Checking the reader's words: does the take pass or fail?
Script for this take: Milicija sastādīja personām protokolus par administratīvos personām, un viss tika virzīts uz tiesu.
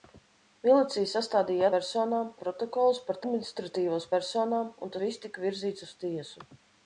pass